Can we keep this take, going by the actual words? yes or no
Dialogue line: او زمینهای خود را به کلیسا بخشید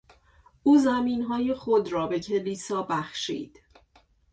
yes